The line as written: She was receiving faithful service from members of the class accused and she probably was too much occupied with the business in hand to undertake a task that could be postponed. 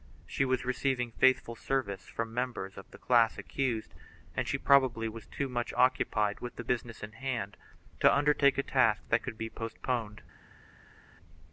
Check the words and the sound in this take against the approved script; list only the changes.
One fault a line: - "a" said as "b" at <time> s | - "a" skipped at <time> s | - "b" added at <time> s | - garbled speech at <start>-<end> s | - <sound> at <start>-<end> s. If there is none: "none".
none